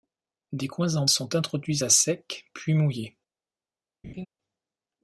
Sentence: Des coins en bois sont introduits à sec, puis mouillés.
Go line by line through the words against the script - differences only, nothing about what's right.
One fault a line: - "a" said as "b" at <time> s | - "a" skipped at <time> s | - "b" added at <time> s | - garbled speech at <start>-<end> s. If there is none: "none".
- "bois" skipped at 1.1 s